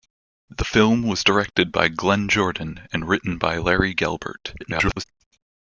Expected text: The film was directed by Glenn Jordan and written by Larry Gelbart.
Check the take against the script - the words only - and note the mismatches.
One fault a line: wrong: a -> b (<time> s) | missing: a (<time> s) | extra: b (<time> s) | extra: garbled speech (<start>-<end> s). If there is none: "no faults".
extra: garbled speech (4.6-5.0 s)